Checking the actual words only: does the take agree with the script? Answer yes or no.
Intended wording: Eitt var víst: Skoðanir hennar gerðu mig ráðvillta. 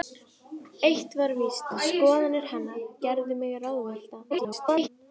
no